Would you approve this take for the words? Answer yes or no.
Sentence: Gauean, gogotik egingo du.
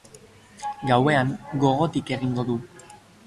yes